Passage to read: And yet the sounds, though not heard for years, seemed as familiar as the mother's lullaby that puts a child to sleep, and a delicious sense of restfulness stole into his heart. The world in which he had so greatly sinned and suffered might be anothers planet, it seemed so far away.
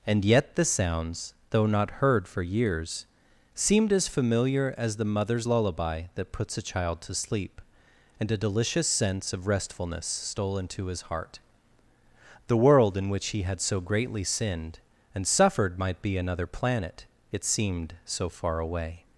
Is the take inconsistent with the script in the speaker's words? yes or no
yes